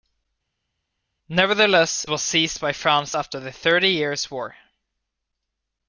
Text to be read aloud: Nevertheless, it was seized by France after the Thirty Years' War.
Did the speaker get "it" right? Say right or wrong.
wrong